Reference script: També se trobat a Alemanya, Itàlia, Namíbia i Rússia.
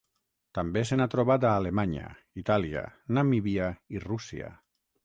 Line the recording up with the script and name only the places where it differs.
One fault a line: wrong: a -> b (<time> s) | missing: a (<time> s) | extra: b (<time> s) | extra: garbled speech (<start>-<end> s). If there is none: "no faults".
extra: n'ha (1.0 s)